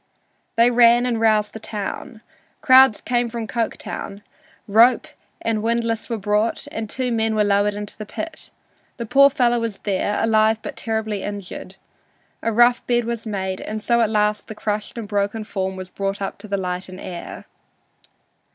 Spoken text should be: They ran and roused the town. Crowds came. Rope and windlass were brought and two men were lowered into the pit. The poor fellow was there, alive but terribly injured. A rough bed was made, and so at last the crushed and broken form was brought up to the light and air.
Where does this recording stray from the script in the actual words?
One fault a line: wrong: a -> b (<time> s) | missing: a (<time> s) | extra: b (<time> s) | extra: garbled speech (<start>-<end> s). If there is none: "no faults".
extra: from Coketown (3.3 s)